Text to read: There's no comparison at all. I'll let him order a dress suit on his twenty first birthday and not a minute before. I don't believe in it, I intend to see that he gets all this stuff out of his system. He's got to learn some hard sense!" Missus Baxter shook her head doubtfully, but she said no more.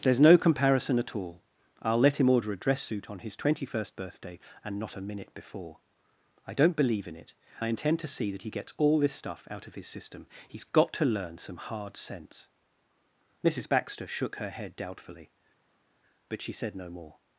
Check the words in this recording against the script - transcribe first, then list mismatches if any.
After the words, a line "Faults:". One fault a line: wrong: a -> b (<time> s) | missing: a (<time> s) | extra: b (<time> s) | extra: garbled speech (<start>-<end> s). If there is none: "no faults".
There's no comparison at all. I'll let him order a dress suit on his twenty first birthday and not a minute before. I don't believe in it, I intend to see that he gets all this stuff out of his system. He's got to learn some hard sense!" Missus Baxter shook her head doubtfully, but she said no more.
Faults:
no faults